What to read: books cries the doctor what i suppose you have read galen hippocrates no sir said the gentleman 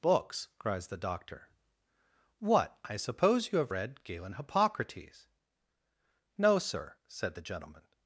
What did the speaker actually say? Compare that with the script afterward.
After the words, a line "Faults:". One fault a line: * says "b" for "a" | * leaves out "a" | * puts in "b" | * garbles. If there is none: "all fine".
books cries the doctor what i suppose you have read galen hippocrates no sir said the gentleman
Faults:
all fine